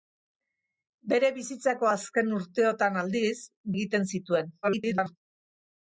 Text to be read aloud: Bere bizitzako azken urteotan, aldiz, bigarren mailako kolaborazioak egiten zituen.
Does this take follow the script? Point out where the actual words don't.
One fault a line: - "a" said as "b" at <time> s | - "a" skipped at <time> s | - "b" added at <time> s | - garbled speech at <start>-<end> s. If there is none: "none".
- "bigarren mailako kolaborazioak" skipped at 3.3 s
- garbled speech at 4.6-5.2 s